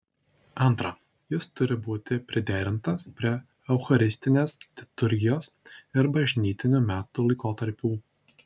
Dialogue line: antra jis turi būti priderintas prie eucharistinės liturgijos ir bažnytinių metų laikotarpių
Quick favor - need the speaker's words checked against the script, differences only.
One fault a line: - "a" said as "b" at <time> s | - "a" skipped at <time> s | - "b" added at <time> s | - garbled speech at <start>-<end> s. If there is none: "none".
none